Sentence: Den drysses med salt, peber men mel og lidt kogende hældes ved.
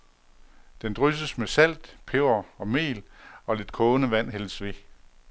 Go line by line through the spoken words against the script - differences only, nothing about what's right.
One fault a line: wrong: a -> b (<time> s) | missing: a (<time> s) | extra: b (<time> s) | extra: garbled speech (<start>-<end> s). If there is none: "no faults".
wrong: men -> og (2.6 s)
extra: vand (4.1 s)